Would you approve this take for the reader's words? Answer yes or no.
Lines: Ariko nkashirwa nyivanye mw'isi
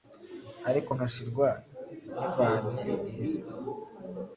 yes